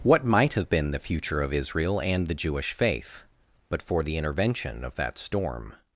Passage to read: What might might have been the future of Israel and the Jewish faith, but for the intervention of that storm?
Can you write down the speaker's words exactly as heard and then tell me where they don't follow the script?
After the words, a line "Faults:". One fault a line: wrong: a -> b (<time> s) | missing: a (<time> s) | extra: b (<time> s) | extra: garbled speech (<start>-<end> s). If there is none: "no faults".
What might have been the future of Israel and the Jewish faith, but for the intervention of that storm?
Faults:
missing: might (0.5 s)